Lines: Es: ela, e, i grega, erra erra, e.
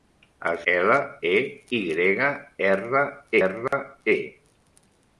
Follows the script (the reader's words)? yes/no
yes